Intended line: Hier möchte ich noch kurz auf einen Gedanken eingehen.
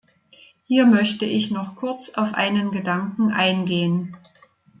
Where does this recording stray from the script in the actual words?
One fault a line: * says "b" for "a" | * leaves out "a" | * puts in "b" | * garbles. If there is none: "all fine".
all fine